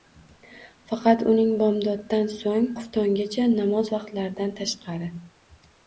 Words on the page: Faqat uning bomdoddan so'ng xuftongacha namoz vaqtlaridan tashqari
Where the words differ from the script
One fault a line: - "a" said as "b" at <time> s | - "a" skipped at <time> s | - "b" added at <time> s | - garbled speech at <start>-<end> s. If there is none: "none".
none